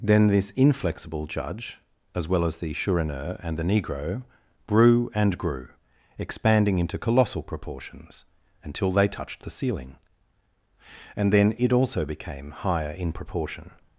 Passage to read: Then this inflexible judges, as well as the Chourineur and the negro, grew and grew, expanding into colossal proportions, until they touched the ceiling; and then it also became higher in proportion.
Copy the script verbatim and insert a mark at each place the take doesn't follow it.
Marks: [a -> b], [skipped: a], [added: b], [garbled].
Then this inflexible [judges, -> judge] as well as the Chourineur and the negro, grew and grew, expanding into colossal proportions, until they touched the ceiling; and then it also became higher in proportion.